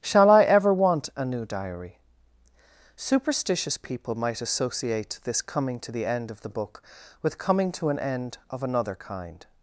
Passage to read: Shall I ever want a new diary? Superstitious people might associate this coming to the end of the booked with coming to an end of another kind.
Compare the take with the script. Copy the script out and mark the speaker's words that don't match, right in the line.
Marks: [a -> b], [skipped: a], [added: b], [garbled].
Shall I ever want a new diary? Superstitious people might associate this coming to the end of the [booked -> book] with coming to an end of another kind.